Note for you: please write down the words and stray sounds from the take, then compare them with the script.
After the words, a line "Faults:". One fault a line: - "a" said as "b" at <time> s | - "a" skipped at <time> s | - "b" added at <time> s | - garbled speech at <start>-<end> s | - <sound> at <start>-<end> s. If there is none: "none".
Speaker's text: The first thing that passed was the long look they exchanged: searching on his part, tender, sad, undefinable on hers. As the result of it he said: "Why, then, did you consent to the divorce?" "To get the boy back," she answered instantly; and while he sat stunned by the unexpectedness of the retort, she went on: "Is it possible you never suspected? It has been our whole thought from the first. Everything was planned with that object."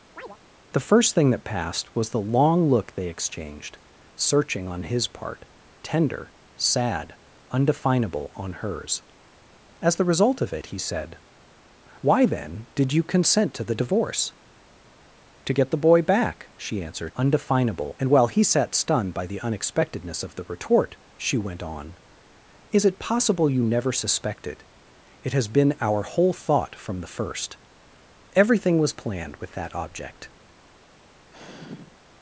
The first thing that passed was the long look they exchanged: searching on his part, tender, sad, undefinable on hers. As the result of it he said: "Why, then, did you consent to the divorce?" "To get the boy back," she answered undefinable; and while he sat stunned by the unexpectedness of the retort, she went on: "Is it possible you never suspected? It has been our whole thought from the first. Everything was planned with that object."
Faults:
- chirp at 0.2-0.4 s
- "instantly" said as "undefinable" at 17.2 s
- sigh at 31.3-32.0 s